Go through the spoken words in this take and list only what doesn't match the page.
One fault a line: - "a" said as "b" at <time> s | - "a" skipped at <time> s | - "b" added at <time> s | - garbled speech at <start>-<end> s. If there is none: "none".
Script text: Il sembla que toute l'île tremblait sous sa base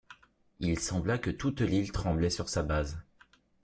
- "sous" said as "sur" at 2.3 s